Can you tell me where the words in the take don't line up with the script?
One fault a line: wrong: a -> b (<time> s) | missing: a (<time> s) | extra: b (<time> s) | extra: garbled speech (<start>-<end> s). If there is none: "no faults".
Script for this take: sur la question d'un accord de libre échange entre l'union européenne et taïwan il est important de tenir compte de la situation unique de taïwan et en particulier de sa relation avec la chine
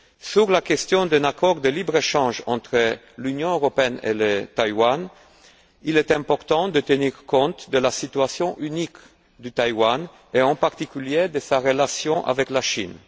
no faults